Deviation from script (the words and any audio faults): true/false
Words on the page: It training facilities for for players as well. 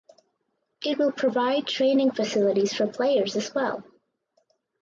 true